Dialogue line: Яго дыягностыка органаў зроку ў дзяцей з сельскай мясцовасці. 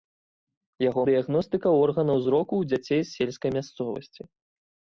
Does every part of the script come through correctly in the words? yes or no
yes